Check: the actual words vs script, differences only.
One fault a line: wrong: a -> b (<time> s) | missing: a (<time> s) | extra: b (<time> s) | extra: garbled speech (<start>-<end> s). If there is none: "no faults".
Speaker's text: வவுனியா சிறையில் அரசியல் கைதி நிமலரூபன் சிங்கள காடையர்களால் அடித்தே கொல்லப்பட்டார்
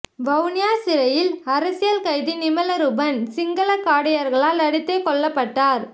no faults